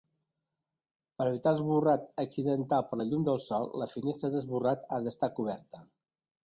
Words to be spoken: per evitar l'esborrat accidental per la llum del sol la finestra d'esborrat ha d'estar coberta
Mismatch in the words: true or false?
false